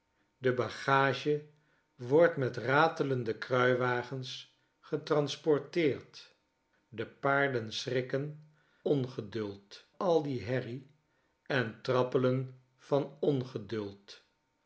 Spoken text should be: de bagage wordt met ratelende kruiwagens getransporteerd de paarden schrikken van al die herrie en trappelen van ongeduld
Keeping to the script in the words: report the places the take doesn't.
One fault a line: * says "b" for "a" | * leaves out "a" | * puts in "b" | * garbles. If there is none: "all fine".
* says "ongeduld" for "van"